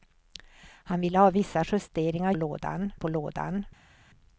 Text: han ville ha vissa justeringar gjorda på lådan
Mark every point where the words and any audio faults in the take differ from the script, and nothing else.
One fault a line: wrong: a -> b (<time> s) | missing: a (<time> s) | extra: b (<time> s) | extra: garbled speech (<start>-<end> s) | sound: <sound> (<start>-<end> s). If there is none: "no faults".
wrong: gjorda -> lådan (2.3 s)